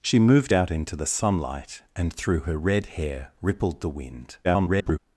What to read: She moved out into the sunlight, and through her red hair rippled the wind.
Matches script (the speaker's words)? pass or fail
fail